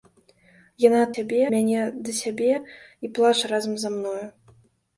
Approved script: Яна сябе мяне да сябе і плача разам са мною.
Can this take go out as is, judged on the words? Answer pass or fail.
pass